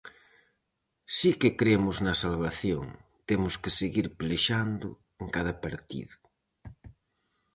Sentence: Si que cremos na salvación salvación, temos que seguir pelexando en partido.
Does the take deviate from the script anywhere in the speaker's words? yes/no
yes